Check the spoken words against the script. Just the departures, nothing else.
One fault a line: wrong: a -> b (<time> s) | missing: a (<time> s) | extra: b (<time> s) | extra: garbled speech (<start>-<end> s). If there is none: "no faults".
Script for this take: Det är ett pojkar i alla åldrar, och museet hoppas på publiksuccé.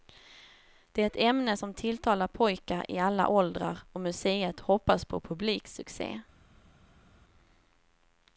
extra: ämne som tilltalar (1.1 s)